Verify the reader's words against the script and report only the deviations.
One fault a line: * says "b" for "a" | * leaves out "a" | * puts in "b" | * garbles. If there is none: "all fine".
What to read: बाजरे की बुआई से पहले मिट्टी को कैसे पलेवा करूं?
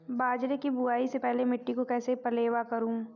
all fine